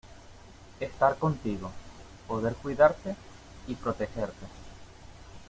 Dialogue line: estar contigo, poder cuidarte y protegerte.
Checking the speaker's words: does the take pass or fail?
pass